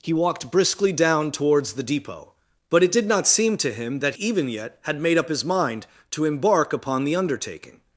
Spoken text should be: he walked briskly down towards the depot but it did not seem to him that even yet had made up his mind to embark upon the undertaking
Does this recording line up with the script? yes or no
yes